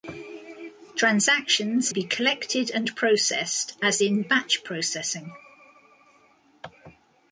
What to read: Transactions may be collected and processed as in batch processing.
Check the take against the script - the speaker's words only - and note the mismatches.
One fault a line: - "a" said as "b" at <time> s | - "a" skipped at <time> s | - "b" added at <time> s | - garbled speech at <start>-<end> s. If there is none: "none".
- "may" skipped at 1.9 s